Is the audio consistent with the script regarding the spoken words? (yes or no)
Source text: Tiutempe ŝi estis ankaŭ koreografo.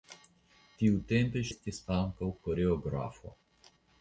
no